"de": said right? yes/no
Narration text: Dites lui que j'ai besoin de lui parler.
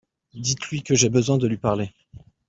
yes